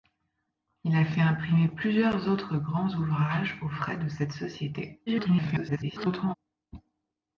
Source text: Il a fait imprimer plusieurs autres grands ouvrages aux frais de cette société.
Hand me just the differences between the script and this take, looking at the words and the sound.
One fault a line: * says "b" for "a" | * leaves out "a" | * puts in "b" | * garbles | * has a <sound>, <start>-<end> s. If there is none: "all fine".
* garbles